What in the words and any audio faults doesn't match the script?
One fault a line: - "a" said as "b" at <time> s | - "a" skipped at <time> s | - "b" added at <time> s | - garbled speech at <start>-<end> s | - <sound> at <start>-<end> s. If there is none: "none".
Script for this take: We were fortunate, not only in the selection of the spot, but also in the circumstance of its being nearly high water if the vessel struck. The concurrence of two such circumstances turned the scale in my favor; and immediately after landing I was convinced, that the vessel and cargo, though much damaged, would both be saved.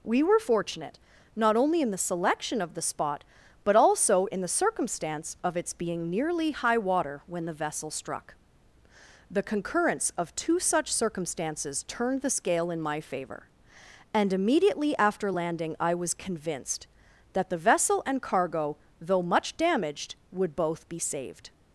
- "if" said as "when" at 7.3 s